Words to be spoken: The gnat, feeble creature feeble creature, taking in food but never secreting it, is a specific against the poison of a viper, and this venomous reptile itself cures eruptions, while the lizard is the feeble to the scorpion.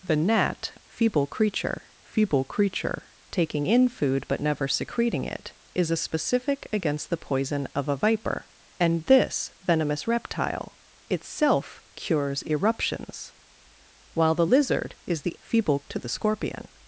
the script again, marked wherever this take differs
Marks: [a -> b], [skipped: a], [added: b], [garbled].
The gnat, feeble creature feeble creature, taking in food but never secreting it, is a specific against the poison of a viper, and this venomous reptile itself cures eruptions, while the lizard is the feeble to the scorpion.